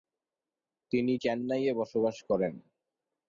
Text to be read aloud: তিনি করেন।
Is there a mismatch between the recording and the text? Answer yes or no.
yes